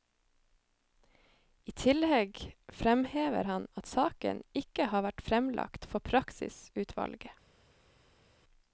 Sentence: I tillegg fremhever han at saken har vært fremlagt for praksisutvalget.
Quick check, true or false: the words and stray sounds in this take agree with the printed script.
false